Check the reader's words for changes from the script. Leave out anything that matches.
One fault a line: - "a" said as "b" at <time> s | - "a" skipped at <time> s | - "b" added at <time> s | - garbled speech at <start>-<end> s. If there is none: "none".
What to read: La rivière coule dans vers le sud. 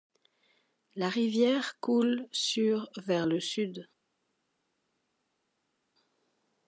- "dans" said as "sur" at 2.3 s